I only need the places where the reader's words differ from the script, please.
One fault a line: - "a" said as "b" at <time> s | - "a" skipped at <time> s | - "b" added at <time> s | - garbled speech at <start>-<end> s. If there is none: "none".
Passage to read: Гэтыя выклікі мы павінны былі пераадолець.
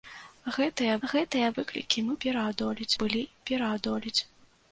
- "гэтыя" added at 1.1 s
- "павінны" said as "пераадолець" at 2.3 s